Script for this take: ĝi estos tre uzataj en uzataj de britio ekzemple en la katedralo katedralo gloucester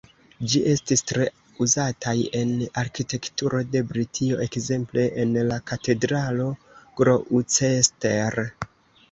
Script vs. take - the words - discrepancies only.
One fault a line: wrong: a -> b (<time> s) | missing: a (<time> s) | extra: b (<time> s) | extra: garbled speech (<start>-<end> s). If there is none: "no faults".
wrong: estos -> estis (0.7 s)
wrong: uzataj -> arkitekturo (2.8 s)
missing: katedralo (6.5 s)